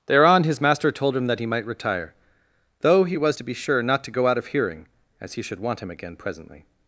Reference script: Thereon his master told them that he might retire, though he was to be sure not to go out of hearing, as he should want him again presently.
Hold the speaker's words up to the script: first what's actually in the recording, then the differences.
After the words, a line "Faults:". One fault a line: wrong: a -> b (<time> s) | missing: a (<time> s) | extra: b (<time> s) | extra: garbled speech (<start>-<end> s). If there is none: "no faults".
Thereon his master told him that he might retire, though he was to be sure not to go out of hearing, as he should want him again presently.
Faults:
wrong: them -> him (1.1 s)